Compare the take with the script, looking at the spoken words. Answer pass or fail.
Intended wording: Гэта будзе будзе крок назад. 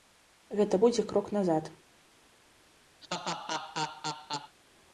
fail